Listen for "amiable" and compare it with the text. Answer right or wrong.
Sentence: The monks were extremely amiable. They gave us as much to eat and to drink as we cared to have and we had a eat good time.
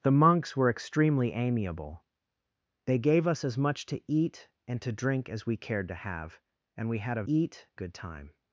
right